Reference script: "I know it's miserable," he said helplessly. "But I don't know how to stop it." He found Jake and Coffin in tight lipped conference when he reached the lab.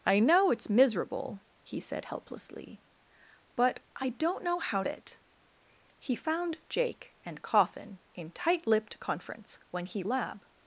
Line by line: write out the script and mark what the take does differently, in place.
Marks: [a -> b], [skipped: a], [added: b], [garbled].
"I know it's miserable," he said helplessly. "But I don't know how [skipped: to stop] it." He found Jake and Coffin in tight lipped conference when he [skipped: reached the] lab.